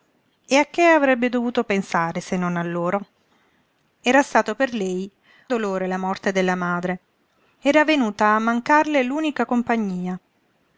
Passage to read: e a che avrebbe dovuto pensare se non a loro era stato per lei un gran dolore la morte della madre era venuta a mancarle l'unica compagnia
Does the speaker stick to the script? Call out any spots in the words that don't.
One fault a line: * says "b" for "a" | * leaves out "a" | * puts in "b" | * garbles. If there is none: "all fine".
* leaves out "un gran"